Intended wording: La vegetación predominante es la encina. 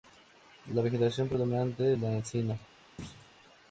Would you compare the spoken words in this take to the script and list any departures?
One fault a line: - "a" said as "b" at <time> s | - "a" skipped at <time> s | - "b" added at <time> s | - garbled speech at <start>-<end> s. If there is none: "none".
none